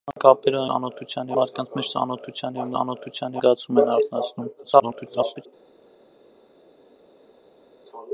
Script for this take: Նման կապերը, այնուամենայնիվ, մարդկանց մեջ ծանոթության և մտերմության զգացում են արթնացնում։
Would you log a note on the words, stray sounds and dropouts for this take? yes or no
yes